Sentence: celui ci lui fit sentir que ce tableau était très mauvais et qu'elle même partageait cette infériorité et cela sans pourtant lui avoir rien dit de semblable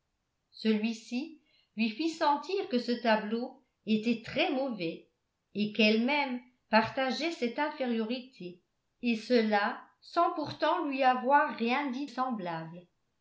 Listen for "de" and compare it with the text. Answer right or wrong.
wrong